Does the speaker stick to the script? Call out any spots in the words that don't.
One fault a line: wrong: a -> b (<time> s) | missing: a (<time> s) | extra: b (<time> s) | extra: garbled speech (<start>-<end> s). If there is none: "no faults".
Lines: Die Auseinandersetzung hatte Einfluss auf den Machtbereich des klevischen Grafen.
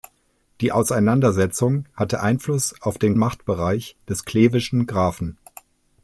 no faults